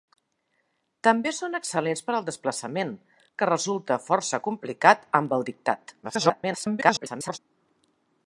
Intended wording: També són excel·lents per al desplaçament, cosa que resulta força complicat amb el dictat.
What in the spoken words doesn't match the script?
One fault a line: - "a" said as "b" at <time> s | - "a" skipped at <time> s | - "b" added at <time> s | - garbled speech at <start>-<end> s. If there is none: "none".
- "cosa" skipped at 3.0 s
- garbled speech at 6.0-7.4 s